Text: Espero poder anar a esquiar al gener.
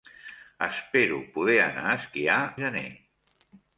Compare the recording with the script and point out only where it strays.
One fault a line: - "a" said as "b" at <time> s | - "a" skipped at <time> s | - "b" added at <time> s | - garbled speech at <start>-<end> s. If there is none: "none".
- "al" skipped at 2.4 s